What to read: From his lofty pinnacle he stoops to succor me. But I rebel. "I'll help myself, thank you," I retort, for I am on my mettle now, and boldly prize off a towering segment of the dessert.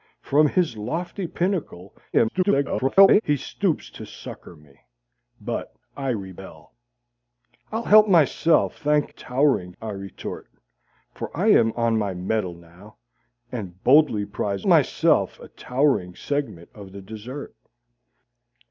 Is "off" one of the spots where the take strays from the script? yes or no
yes